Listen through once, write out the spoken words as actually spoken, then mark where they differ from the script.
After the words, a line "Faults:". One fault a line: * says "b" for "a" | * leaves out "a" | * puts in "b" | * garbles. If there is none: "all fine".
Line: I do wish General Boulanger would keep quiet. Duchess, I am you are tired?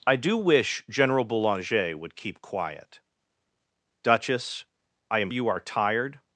I do wish General Boulanger would keep quiet. Duchess, I am you are tired?
Faults:
all fine